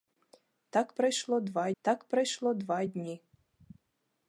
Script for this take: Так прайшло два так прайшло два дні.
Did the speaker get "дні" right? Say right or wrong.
right